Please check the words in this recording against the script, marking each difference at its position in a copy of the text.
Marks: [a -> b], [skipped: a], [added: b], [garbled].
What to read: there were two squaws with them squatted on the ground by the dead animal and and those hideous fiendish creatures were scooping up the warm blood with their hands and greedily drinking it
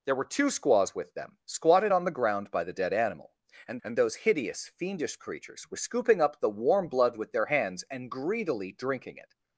there were two squaws with them squatted on the ground by the dead animal and and those hideous fiendish creatures were scooping up the warm blood with their hands and greedily drinking it